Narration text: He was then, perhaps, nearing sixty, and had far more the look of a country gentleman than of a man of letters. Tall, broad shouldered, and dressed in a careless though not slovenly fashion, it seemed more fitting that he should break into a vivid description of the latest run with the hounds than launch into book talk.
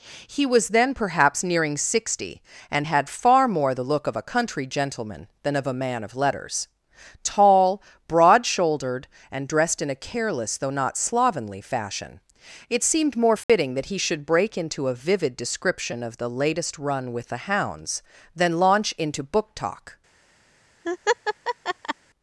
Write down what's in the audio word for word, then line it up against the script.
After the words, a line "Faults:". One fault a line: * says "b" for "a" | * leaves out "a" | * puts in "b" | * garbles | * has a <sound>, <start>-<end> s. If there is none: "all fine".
He was then, perhaps, nearing sixty, and had far more the look of a country gentleman than of a man of letters. Tall, broad shouldered, and dressed in a careless though not slovenly fashion, it seemed more fitting that he should break into a vivid description of the latest run with the hounds than launch into book talk.
Faults:
* has a dropout, 13.4-13.5 s
* has a laugh, 20.8-21.9 s